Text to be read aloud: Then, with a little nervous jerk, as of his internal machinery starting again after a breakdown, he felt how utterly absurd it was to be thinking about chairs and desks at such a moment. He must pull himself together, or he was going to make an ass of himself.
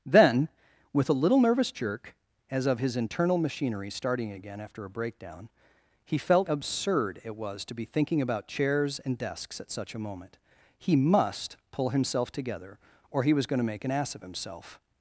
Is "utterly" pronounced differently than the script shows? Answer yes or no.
yes